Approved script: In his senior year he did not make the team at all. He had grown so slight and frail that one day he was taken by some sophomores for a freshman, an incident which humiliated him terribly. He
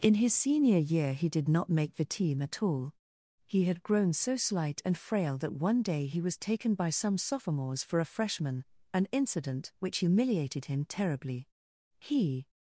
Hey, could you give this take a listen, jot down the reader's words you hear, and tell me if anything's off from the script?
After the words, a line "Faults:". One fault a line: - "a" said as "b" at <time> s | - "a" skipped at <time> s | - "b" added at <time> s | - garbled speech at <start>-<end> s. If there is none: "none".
In his senior year he did not make the team at all. He had grown so slight and frail that one day he was taken by some sophomores for a freshman, an incident which humiliated him terribly. He
Faults:
none